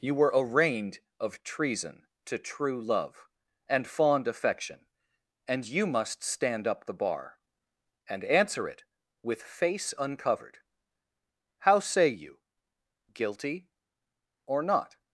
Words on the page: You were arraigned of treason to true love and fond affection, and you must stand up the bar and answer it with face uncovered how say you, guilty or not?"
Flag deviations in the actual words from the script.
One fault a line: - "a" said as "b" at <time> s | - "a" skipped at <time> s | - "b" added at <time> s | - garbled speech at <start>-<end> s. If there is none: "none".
none